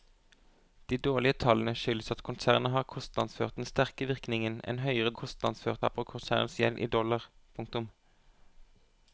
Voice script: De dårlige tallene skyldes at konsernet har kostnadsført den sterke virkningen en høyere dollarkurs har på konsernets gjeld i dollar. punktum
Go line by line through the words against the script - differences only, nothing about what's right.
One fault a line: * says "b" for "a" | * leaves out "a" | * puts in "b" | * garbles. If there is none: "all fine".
* says "kostnadsført" for "dollarkurs"